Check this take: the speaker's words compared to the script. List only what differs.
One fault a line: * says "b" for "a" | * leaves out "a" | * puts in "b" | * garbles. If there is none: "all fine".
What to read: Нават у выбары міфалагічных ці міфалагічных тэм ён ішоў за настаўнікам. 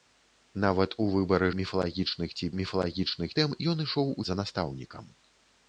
all fine